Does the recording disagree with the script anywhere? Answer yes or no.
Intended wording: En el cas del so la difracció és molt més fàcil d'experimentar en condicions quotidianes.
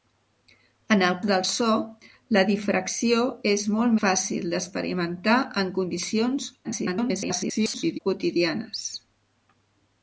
yes